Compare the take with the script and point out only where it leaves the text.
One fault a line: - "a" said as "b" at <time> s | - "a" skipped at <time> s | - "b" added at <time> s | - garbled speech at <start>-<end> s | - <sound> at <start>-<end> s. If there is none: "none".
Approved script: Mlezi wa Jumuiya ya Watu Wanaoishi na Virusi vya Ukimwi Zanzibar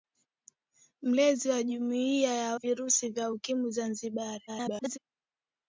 - "Watu Wanaoishi na" skipped at 2.5 s
- garbled speech at 4.5-5.0 s